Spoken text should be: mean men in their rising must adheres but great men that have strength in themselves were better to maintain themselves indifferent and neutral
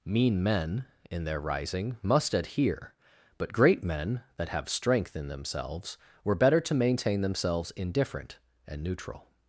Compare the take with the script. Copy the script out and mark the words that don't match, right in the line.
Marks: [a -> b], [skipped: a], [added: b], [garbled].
mean men in their rising must [adheres -> adhere] but great men that have strength in themselves were better to maintain themselves indifferent and neutral